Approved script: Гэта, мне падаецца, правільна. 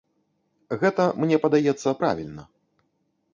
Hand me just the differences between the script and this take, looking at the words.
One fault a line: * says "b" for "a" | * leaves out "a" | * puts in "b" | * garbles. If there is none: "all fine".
all fine